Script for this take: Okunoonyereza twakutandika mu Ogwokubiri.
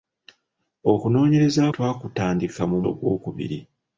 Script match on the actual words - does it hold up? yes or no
yes